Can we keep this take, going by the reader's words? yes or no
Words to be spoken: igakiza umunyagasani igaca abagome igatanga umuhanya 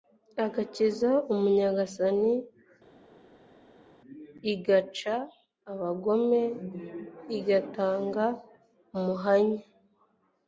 yes